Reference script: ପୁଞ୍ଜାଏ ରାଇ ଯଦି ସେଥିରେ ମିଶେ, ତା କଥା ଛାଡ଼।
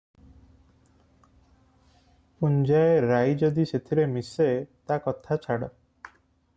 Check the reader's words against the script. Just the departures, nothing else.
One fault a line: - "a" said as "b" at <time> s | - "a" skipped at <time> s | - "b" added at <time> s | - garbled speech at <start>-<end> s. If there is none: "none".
none